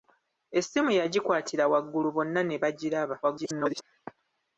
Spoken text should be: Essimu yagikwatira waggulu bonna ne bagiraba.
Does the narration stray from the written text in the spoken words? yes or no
yes